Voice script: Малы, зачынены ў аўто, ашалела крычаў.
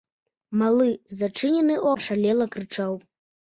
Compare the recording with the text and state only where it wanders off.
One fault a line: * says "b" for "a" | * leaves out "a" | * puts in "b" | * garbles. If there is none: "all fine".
* leaves out "аўто"